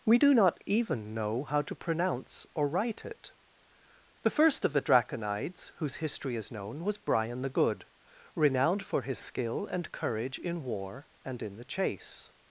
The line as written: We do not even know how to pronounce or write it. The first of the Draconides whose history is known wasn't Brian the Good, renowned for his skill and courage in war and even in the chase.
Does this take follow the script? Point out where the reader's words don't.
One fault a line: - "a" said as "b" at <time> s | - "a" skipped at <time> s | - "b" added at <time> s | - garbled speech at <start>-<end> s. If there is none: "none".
- "wasn't" said as "was" at 6.8 s
- "even" skipped at 11.4 s